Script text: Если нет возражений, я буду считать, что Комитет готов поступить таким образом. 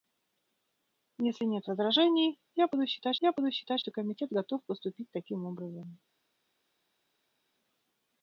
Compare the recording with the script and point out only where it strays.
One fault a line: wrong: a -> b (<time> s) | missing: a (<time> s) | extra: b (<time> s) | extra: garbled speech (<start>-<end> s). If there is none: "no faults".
extra: я буду считать (3.2 s)